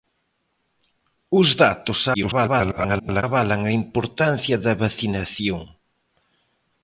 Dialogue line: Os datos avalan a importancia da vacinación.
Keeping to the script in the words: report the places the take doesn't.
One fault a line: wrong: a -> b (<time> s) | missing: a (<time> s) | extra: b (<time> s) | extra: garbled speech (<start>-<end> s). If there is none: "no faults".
extra: garbled speech (2.1-3.2 s)